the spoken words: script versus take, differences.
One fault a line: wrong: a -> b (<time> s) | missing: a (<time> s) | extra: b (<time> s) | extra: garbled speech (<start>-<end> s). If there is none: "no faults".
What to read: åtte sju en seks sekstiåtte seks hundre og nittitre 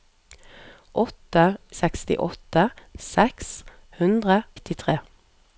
missing: sju en seks (1.4 s)
missing: og (4.4 s)